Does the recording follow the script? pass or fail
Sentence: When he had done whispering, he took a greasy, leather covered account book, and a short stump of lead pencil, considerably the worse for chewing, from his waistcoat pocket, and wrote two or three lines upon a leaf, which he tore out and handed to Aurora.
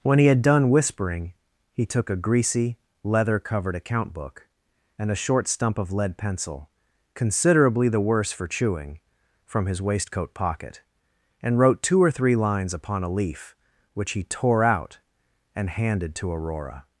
pass